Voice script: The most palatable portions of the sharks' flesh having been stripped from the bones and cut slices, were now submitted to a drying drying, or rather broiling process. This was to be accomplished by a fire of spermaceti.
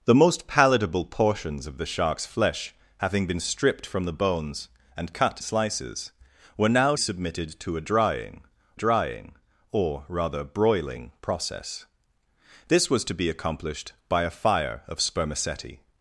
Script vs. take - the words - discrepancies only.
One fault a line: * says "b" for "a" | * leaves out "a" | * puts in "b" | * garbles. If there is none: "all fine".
all fine